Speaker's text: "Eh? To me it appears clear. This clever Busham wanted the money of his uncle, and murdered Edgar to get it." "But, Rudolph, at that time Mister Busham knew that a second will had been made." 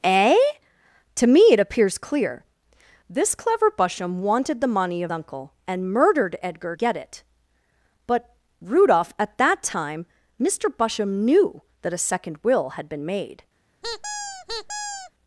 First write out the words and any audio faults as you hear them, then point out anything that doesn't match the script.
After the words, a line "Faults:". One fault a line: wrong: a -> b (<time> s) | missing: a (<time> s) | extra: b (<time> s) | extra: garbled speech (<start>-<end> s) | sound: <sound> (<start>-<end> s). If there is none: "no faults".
"Eh? To me it appears clear. This clever Busham wanted the money of uncle, and murdered Edgar get it." "But, Rudolph, at that time Mister Busham knew that a second will had been made."
Faults:
missing: his (5.1 s)
missing: to (6.8 s)
sound: squeak (13.8-15.1 s)